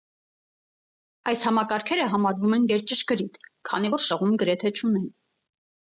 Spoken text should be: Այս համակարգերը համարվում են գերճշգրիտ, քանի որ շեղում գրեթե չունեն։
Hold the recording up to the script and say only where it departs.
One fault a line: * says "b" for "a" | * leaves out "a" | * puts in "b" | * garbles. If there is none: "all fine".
all fine